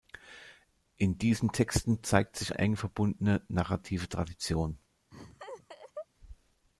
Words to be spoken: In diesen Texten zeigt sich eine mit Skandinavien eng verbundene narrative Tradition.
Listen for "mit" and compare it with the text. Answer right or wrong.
wrong